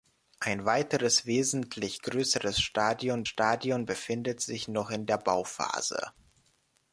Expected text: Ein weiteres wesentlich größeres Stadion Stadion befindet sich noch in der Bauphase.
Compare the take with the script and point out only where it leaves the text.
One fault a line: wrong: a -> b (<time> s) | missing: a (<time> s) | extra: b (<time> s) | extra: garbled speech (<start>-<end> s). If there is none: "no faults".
no faults